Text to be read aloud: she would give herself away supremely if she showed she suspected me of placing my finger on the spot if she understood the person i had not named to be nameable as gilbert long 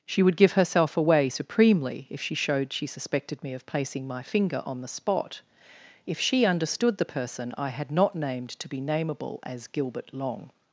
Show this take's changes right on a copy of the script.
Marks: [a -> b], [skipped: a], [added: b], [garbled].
she would give herself away supremely if she showed she suspected me of placing my finger on the spot if she understood the person i had not named to be nameable as gilbert long